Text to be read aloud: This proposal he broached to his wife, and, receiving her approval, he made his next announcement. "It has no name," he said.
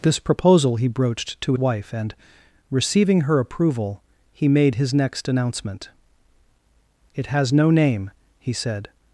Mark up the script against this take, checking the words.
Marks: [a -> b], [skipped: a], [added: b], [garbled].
This proposal he broached to [skipped: his] wife, and, receiving her approval, he made his next announcement. "It has no name," he said.